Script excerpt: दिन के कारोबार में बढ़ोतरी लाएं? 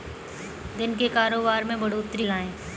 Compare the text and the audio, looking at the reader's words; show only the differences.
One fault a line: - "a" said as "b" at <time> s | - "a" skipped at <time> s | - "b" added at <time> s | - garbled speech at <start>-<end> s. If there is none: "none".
none